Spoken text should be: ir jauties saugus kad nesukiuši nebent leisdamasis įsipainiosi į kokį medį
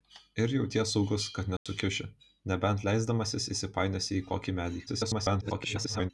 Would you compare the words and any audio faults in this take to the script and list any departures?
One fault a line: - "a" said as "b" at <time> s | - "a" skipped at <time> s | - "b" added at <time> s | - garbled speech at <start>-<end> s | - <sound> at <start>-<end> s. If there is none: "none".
- dropout at 1.6-1.7 s
- garbled speech at 4.9-6.1 s